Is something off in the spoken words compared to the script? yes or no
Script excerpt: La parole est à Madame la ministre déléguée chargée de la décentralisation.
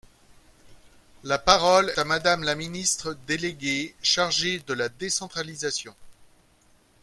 yes